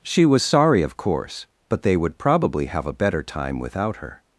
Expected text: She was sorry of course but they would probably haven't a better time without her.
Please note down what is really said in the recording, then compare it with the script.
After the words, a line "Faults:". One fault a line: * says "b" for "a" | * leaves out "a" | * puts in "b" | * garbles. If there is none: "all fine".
She was sorry of course but they would probably have a better time without her.
Faults:
* says "have" for "haven't"